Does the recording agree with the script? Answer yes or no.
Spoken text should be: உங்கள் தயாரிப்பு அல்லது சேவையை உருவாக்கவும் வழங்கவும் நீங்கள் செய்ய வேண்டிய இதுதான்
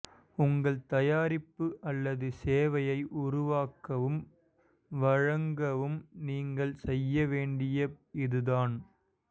yes